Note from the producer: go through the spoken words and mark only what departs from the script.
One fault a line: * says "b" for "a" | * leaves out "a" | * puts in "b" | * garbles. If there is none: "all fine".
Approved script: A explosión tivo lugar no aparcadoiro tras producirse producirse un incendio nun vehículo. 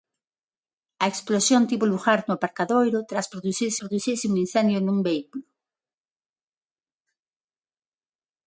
all fine